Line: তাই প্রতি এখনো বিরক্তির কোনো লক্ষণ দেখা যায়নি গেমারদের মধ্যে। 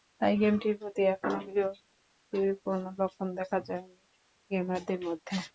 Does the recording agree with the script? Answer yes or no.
no